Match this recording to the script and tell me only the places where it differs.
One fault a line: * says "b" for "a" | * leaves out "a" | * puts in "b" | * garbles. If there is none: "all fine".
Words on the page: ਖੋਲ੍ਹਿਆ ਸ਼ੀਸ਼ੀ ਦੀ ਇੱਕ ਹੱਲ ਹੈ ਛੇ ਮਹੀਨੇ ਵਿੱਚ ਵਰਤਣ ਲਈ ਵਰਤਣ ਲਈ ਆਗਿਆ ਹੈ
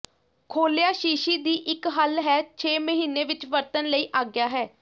* leaves out "ਵਰਤਣ ਲਈ"